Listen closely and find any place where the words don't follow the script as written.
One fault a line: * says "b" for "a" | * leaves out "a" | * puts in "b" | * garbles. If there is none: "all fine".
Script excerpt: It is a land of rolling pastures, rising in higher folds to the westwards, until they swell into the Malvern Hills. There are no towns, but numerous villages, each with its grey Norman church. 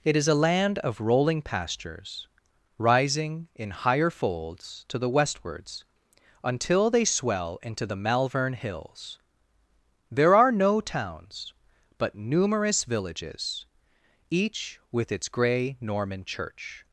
all fine